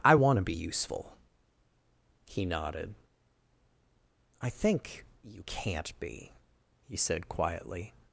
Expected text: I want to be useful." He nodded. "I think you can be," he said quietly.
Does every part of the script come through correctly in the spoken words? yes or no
no